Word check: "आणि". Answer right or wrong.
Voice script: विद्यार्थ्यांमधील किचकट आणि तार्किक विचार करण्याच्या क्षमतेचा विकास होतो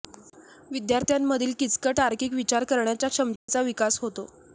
wrong